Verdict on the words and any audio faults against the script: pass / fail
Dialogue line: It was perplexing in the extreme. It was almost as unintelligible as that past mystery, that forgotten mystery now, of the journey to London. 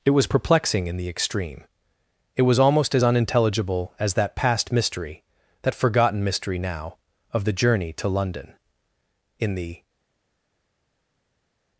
fail